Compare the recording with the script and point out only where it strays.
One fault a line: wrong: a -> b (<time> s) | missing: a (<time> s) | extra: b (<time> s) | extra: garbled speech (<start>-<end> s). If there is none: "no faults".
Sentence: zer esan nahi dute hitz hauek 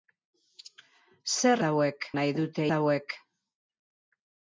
wrong: esan -> hauek (1.7 s)
missing: hitz (2.7 s)